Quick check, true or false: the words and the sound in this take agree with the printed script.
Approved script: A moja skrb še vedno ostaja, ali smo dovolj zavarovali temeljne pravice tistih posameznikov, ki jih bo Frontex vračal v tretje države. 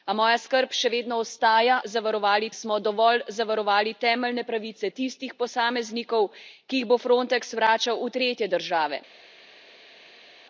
false